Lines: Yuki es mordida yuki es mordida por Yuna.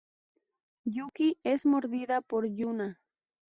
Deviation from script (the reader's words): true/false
true